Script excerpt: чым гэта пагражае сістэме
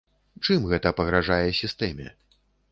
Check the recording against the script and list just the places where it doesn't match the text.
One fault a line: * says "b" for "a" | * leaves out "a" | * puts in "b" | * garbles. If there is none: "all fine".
all fine